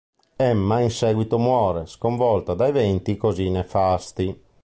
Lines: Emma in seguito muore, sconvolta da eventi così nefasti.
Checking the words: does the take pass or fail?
pass